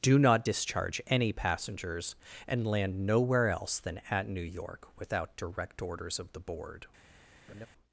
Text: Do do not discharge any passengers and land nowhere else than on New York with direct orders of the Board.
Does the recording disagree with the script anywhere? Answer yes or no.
yes